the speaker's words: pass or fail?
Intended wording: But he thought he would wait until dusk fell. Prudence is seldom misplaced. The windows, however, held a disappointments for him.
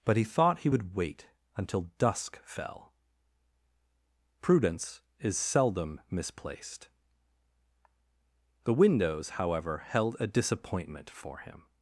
fail